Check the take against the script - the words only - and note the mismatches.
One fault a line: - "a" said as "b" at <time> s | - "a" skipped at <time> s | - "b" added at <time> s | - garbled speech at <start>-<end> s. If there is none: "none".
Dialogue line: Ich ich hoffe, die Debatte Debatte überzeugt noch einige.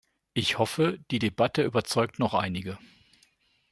- "ich" skipped at 0.6 s
- "Debatte" skipped at 1.6 s